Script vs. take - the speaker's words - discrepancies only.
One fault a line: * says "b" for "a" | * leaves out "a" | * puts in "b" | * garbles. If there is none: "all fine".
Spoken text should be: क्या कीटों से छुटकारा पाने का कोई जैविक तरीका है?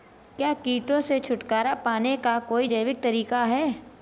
all fine